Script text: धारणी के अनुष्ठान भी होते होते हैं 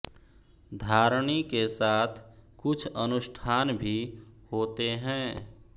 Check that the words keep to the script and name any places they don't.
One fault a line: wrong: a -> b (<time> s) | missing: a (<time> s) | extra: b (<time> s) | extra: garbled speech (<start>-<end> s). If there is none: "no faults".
extra: साथ कुछ (1.7 s)
missing: होते (4.9 s)